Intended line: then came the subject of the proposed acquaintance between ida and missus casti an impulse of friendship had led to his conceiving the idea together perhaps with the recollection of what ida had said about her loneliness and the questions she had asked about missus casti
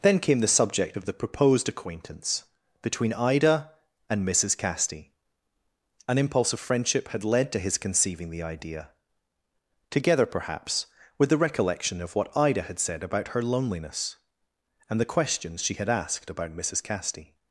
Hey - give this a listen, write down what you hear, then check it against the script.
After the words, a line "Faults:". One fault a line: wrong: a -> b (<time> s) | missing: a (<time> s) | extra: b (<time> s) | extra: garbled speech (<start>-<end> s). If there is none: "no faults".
then came the subject of the proposed acquaintance between ida and missus casti an impulse of friendship had led to his conceiving the idea together perhaps with the recollection of what ida had said about her loneliness and the questions she had asked about missus casti
Faults:
no faults